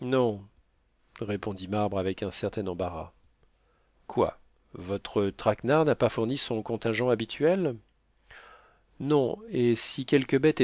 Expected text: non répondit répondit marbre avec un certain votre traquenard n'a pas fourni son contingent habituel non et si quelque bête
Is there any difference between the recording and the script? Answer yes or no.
yes